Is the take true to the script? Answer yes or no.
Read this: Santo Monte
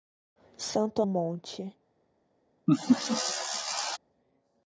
yes